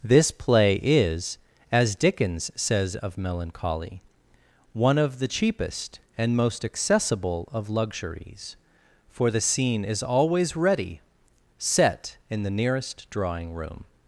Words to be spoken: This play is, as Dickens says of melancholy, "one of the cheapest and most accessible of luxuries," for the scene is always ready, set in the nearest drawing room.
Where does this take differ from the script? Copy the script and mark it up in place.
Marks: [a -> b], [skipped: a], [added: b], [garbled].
This play is, as Dickens says of melancholy, "one of the cheapest and most accessible of luxuries," for the scene is always ready, set in the nearest drawing room.